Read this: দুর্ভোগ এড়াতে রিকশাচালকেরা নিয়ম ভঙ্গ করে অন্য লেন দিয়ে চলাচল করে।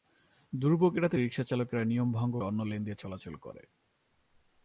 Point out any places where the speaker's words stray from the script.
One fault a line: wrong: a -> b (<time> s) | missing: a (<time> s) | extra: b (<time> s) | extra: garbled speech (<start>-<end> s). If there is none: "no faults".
missing: করে (2.3 s)